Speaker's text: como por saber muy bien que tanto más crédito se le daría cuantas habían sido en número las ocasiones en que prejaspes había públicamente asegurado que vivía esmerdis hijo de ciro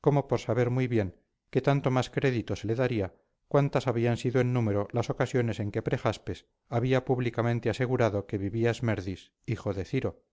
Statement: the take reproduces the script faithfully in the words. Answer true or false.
true